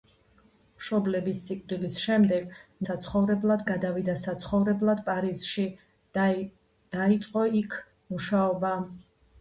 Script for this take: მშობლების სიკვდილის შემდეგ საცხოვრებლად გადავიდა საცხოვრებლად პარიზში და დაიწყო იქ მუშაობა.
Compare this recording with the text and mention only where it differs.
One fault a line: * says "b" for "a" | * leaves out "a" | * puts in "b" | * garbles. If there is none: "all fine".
all fine